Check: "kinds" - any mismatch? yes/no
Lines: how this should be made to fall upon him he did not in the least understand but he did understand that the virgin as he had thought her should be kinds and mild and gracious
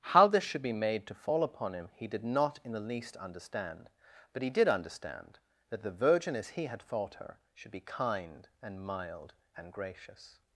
yes